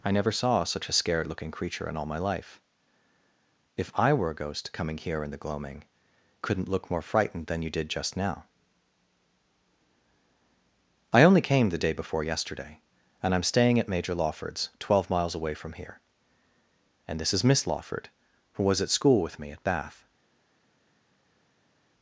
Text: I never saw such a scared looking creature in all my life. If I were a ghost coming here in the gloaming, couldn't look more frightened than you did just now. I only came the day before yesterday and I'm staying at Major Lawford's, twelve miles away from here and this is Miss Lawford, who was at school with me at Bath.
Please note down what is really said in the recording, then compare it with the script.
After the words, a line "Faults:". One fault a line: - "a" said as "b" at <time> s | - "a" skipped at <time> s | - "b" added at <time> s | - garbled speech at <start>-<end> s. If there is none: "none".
I never saw such a scared looking creature in all my life. If I were a ghost coming here in the gloaming, couldn't look more frightened than you did just now. I only came the day before yesterday and I'm staying at Major Lawford's, twelve miles away from here and this is Miss Lawford, who was at school with me at Bath.
Faults:
none